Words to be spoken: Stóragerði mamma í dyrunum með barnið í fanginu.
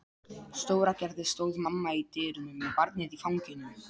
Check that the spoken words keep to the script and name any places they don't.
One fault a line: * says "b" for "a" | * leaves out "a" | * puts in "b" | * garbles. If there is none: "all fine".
* puts in "stóð"